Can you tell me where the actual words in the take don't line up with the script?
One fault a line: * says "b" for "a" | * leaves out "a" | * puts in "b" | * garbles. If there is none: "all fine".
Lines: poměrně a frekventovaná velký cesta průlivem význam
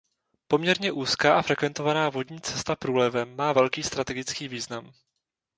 * puts in "úzká"
* says "vodní" for "velký"
* puts in "má velký strategický"